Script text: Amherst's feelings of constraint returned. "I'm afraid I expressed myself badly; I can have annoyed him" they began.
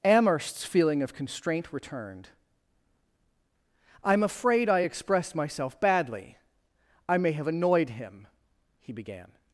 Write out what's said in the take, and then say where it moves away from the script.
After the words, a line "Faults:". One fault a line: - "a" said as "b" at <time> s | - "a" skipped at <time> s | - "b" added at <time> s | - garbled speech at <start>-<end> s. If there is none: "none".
Amherst's feeling of constraint returned. "I'm afraid I expressed myself badly; I may have annoyed him" he began.
Faults:
- "feelings" said as "feeling" at 0.7 s
- "can" said as "may" at 7.2 s
- "they" said as "he" at 8.8 s